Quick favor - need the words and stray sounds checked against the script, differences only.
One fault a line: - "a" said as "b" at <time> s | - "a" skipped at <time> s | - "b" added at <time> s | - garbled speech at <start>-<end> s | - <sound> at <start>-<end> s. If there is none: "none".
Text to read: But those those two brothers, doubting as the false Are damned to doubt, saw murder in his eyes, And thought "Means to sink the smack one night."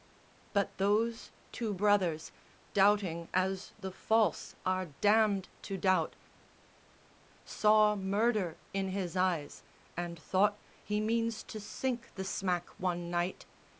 - "those" skipped at 1.3 s
- "He" added at 10.8 s